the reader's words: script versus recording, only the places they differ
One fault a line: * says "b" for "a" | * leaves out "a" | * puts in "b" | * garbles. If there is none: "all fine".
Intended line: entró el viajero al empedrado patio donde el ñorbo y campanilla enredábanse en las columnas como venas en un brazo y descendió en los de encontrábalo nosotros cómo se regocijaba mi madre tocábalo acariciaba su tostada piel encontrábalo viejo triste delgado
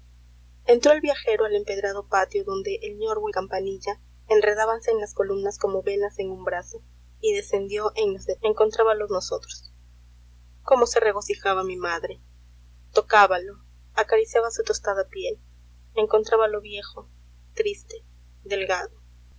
all fine